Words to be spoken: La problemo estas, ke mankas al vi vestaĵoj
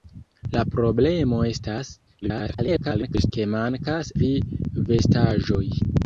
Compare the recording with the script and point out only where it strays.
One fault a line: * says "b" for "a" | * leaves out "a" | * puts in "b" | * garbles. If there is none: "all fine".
* garbles
* leaves out "al"